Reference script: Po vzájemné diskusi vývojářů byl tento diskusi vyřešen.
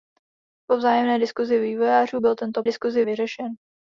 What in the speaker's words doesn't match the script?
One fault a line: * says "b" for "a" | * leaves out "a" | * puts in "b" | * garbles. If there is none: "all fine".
all fine